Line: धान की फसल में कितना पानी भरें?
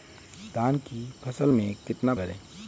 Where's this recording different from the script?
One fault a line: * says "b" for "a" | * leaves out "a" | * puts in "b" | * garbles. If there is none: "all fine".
* leaves out "पानी"